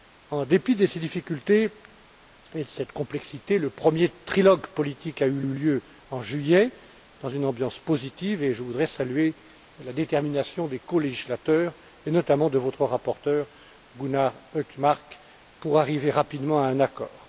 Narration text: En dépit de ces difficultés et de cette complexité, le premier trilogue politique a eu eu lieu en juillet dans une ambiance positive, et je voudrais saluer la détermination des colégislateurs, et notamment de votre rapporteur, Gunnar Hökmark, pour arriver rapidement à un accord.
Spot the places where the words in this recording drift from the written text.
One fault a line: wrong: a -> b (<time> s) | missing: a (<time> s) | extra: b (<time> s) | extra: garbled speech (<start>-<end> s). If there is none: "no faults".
no faults